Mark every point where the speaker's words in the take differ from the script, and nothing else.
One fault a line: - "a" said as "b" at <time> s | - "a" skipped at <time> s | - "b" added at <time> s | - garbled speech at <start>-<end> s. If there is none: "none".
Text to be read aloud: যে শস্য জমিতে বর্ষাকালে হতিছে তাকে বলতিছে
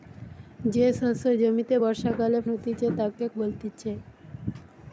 none